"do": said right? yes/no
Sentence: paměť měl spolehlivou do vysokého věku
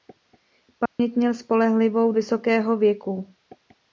no